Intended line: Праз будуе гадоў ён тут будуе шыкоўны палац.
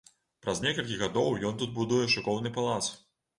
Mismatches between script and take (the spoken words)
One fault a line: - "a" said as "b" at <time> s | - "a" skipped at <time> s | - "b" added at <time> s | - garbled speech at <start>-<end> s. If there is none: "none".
- "будуе" said as "некалькі" at 0.6 s